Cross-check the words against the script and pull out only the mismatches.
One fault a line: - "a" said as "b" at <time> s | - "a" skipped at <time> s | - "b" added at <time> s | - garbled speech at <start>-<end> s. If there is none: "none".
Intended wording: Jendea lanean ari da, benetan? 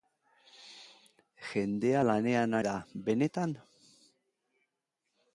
- "ari" skipped at 2.6 s